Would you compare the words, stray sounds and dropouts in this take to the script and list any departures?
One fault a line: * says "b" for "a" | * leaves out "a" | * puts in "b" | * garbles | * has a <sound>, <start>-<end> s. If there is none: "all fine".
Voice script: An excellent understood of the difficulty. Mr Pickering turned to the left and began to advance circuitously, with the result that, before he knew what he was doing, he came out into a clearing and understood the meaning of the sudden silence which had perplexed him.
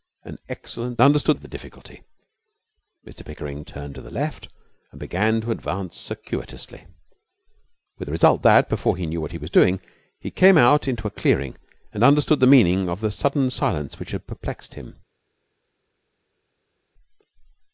all fine